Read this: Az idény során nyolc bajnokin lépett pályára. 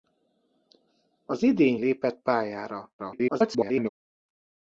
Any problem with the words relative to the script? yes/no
yes